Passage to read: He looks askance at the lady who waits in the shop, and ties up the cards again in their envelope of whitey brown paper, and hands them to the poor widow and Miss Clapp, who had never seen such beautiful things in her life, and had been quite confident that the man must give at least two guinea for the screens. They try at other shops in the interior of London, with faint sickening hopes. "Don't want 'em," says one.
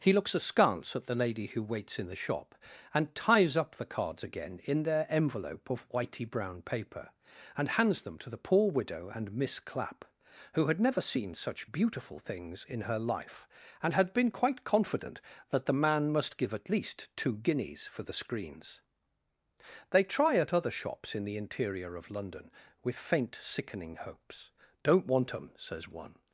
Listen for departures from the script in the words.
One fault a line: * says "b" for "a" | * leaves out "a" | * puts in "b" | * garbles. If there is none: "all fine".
* says "guineas" for "guinea"